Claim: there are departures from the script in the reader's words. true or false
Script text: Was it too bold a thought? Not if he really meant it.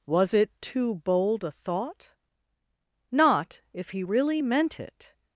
false